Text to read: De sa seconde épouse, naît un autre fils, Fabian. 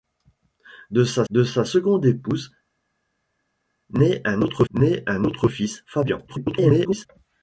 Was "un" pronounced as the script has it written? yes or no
yes